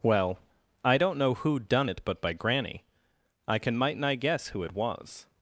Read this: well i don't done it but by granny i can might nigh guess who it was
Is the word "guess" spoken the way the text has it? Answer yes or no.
yes